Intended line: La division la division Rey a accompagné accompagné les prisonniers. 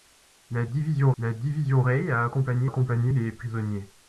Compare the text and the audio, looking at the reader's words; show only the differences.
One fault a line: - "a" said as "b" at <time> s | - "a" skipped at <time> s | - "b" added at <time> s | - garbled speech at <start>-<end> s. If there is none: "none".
none